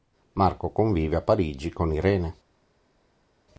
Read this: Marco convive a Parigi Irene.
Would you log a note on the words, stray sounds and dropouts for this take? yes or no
yes